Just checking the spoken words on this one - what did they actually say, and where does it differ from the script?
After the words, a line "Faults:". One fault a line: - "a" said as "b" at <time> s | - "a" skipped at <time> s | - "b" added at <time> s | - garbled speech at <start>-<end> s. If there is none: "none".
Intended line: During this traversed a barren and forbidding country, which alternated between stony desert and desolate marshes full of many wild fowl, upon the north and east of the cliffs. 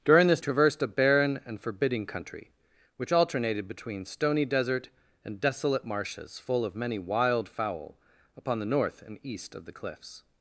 During this traversed a barren and forbidding country, which alternated between stony desert and desolate marshes full of many wild fowl, upon the north and east of the cliffs.
Faults:
none